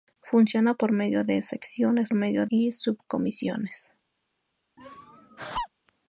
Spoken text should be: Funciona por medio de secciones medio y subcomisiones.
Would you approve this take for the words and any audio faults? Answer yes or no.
no